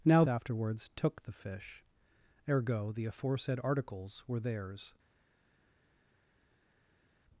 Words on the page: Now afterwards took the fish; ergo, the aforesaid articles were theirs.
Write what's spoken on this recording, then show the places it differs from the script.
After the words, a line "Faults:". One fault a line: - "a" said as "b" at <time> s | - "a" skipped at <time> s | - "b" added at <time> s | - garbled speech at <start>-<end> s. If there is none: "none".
Now afterwards took the fish; ergo, the aforesaid articles were theirs.
Faults:
none